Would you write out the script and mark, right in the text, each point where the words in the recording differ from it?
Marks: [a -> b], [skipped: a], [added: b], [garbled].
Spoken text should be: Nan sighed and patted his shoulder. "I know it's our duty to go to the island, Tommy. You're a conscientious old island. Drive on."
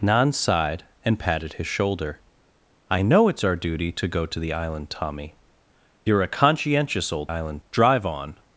Nan sighed and patted his shoulder. "I know it's our duty to go to the island, Tommy. You're a conscientious old island. Drive on."